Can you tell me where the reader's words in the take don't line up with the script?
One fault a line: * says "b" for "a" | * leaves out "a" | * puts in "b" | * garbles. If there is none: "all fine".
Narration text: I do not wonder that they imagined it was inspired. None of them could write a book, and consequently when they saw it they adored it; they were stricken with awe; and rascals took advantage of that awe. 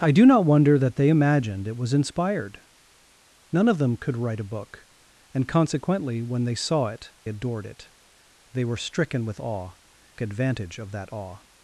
* leaves out "they"
* leaves out "and rascals took"